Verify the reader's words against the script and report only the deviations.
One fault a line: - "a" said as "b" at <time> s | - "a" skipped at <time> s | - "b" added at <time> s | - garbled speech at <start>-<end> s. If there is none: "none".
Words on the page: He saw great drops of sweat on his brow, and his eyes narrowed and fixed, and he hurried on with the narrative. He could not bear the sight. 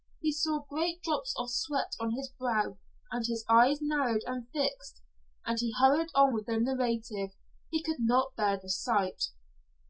none